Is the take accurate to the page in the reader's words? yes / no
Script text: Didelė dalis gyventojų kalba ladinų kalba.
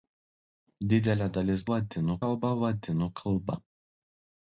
no